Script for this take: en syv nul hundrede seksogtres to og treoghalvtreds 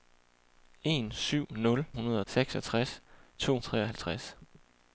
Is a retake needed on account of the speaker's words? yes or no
no